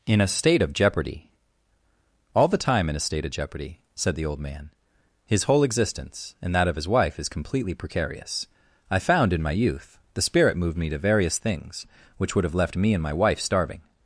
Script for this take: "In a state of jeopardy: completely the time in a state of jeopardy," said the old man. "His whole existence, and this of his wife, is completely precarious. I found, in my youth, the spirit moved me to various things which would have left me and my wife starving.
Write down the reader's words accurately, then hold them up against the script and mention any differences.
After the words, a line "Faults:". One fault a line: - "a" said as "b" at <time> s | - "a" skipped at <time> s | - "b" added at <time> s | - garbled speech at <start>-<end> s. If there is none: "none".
"In a state of jeopardy: all the time in a state of jeopardy," said the old man. "His whole existence, and that of his wife, is completely precarious. I found, in my youth, the spirit moved me to various things which would have left me and my wife starving.
Faults:
- "completely" said as "all" at 2.3 s
- "this" said as "that" at 6.5 s